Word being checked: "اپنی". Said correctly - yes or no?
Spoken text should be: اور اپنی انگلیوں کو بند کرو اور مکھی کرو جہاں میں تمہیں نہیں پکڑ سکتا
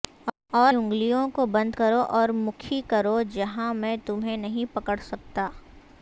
no